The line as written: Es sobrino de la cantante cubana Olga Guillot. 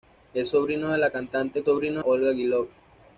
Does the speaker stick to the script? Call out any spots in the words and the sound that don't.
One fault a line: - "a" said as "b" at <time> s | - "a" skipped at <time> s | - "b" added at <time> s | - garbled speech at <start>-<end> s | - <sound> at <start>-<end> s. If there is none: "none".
- "cubana" said as "sobrino" at 1.6 s